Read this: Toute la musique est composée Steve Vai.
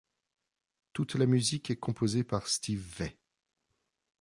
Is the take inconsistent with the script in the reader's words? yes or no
yes